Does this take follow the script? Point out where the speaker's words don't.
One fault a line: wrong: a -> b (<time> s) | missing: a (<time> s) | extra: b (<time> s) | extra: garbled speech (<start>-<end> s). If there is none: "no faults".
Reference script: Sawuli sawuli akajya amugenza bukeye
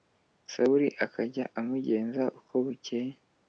missing: sawuli (0.9 s)
extra: uko (2.4 s)